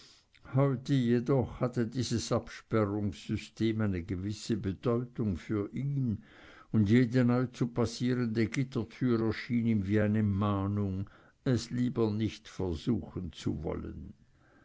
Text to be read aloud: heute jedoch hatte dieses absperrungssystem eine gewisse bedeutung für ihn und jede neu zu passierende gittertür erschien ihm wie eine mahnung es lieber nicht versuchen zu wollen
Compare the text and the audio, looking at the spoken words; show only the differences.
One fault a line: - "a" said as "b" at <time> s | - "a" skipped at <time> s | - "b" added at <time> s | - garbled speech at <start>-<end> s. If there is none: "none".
none